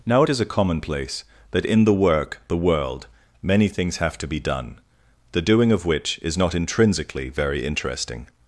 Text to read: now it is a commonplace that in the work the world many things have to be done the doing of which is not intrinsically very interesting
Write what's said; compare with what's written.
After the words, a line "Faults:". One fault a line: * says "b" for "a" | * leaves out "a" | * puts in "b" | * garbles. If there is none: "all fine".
now it is a commonplace that in the work the world many things have to be done the doing of which is not intrinsically very interesting
Faults:
all fine